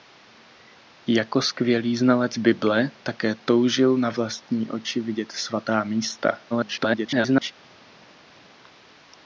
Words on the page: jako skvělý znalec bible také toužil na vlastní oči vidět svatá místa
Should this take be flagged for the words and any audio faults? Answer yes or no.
yes